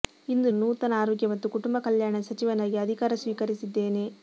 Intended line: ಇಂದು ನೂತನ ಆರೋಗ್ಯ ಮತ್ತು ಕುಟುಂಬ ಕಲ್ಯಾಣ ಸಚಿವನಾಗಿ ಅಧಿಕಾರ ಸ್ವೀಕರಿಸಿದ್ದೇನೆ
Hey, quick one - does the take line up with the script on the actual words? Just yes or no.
yes